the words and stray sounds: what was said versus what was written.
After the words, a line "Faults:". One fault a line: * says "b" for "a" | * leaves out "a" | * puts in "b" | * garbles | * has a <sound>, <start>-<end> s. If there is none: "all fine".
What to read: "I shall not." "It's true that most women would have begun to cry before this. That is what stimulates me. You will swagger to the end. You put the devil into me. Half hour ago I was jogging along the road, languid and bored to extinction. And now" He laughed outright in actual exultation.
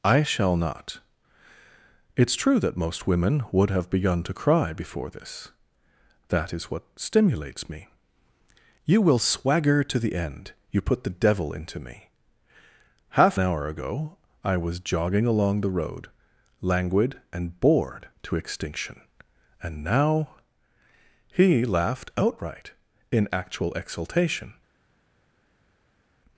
"I shall not." "It's true that most women would have begun to cry before this. That is what stimulates me. You will swagger to the end. You put the devil into me. Half hour ago I was jogging along the road, languid and bored to extinction. And now" He laughed outright in actual exultation.
Faults:
all fine